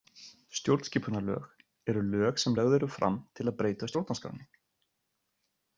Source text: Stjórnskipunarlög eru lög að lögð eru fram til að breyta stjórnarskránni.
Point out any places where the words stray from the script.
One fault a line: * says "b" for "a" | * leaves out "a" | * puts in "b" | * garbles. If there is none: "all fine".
* says "sem" for "að"